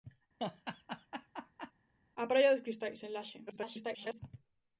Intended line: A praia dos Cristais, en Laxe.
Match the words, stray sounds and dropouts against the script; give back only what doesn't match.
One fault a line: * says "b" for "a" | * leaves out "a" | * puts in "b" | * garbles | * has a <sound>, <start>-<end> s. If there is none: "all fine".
* has a laugh, 0.4-1.7 s
* garbles